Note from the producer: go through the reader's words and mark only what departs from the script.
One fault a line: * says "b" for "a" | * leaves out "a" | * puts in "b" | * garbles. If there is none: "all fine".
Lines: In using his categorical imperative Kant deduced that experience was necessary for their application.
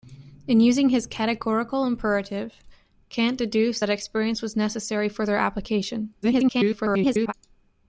* garbles